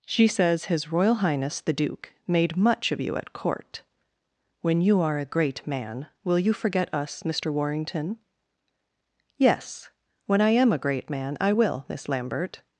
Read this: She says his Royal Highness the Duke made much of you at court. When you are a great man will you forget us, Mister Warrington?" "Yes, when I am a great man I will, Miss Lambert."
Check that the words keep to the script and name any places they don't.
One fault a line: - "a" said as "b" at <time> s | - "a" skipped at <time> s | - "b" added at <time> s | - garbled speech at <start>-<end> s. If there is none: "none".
none